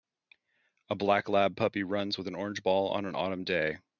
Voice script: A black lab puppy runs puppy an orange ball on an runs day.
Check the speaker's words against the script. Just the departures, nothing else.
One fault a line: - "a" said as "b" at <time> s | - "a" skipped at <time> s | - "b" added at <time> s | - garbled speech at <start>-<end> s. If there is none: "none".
- "puppy" said as "with" at 2.2 s
- "runs" said as "autumn" at 3.1 s